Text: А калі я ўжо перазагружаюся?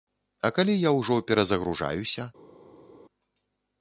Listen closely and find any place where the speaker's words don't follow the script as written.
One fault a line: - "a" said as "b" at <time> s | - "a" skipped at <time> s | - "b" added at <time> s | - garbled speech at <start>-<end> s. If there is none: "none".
none